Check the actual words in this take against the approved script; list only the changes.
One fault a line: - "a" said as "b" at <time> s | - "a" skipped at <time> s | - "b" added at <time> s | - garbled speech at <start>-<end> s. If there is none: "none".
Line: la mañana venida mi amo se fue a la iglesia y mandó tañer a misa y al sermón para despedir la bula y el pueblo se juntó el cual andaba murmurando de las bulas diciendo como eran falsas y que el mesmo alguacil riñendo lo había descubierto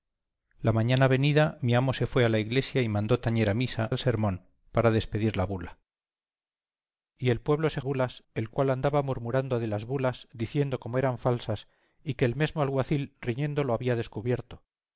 - "y" skipped at 3.9 s
- "juntó" said as "bulas" at 7.8 s